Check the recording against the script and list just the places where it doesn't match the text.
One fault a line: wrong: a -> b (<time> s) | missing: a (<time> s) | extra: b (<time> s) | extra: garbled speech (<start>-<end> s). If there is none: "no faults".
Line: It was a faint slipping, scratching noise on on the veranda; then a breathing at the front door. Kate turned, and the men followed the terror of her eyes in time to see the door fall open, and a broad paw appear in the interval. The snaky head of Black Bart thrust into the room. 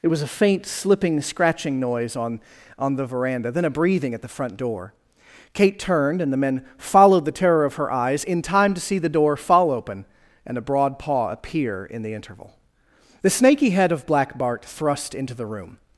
no faults